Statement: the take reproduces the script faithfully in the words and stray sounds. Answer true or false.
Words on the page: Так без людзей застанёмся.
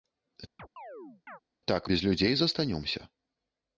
false